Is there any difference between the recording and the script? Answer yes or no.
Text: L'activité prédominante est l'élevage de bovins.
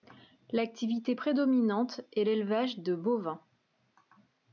no